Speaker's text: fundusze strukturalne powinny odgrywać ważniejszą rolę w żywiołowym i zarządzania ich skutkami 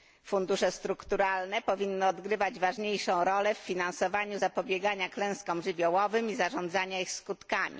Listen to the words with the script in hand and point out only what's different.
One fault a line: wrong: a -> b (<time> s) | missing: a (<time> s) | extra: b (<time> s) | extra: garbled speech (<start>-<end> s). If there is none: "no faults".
extra: finansowaniu zapobiegania klęskom (3.6 s)